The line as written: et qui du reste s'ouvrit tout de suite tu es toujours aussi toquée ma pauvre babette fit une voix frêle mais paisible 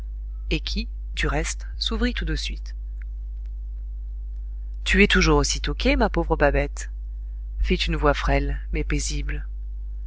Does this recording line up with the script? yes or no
yes